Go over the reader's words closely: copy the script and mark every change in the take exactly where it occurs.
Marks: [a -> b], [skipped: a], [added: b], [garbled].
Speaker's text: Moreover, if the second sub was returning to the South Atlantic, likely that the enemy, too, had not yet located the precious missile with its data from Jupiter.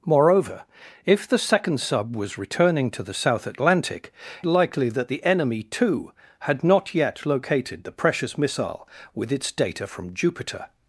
Moreover, if the second sub was returning to the South Atlantic, likely that the enemy, too, had not yet located the precious missile with its data from Jupiter.